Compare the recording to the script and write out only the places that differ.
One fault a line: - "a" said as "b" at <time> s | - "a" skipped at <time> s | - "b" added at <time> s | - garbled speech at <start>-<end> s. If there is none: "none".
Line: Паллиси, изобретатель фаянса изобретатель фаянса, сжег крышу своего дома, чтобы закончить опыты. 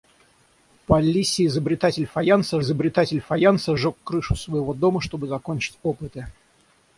none